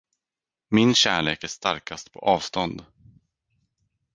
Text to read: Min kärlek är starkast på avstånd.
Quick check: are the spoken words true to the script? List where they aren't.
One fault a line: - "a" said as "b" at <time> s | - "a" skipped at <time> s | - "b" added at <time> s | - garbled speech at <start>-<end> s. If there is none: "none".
none